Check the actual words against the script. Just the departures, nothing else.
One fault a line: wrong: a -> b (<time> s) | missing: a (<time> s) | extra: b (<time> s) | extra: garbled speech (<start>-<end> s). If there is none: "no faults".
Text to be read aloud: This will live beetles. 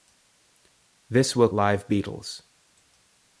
no faults